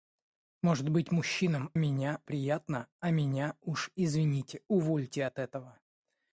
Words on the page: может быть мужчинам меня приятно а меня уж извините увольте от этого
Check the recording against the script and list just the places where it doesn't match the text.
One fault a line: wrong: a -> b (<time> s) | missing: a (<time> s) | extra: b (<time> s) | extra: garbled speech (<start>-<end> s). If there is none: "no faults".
no faults